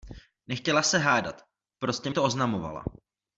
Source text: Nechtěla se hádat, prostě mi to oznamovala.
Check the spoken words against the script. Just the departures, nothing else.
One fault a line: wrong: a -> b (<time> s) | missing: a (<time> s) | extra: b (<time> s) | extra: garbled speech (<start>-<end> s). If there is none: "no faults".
missing: mi (2.1 s)